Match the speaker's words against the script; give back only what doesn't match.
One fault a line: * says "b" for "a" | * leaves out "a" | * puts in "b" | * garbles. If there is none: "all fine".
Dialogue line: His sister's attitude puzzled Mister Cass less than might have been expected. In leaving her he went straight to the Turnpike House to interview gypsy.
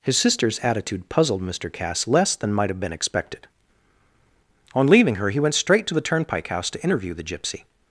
* says "On" for "In"
* puts in "the"